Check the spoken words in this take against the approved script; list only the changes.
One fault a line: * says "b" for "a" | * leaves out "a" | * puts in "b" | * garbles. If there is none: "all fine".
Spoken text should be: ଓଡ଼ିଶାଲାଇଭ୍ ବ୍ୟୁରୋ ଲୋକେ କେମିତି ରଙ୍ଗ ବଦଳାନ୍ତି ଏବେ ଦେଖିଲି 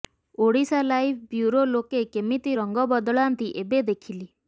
all fine